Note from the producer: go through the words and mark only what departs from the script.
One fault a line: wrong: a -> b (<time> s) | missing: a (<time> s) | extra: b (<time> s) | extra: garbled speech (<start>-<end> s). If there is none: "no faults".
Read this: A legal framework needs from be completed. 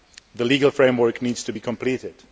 wrong: A -> The (0.3 s)
wrong: from -> to (1.4 s)